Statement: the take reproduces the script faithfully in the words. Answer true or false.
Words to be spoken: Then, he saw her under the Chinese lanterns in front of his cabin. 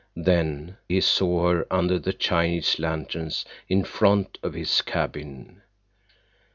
true